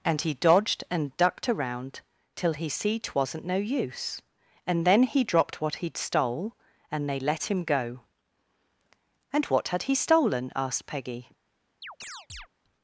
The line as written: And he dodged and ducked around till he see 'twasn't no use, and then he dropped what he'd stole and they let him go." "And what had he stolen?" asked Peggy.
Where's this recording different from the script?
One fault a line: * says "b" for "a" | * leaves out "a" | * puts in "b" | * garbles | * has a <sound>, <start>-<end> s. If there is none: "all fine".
* has a chirp, 11.8-12.5 s